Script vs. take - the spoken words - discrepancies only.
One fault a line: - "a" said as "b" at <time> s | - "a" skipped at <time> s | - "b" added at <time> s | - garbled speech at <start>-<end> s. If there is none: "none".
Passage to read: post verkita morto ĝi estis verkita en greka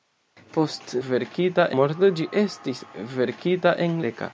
none